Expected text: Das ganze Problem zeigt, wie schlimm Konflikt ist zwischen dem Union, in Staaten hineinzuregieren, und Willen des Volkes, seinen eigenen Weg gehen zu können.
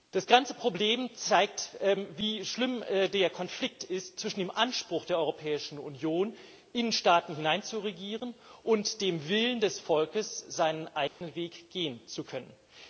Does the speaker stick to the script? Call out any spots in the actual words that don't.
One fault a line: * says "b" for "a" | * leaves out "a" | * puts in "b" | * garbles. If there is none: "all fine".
* puts in "der"
* puts in "Anspruch der Europäischen"
* puts in "dem"